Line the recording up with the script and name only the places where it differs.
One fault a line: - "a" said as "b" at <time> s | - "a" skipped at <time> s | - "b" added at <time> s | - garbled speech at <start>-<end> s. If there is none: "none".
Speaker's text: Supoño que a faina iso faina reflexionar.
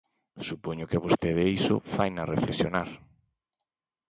- "faina" said as "vostede" at 1.1 s